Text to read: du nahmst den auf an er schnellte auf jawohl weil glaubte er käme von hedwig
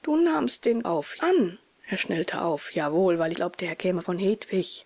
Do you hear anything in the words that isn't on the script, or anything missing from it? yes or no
no